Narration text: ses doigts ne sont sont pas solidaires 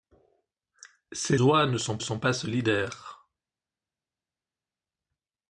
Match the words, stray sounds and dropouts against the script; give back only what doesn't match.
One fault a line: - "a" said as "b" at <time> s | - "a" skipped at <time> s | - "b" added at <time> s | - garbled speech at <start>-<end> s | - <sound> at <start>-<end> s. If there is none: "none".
none